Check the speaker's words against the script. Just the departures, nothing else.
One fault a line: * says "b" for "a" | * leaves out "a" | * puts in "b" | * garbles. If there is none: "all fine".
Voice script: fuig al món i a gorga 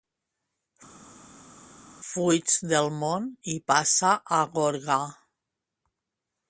* says "del" for "al"
* puts in "passa"